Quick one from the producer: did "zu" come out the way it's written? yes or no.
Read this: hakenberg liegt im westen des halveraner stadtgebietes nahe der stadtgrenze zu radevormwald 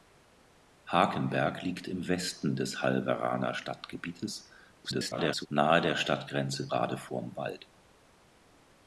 no